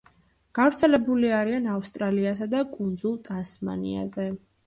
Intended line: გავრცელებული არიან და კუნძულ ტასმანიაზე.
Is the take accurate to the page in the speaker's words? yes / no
no